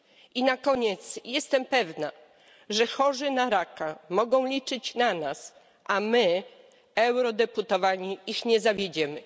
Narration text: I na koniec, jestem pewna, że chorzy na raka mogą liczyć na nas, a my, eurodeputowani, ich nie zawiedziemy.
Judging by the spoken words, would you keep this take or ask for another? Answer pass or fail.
pass